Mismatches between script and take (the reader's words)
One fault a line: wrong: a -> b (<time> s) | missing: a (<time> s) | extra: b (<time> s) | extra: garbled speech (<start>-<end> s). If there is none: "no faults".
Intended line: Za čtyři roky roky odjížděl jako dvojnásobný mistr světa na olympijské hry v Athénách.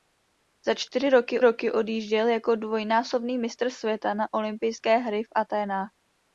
no faults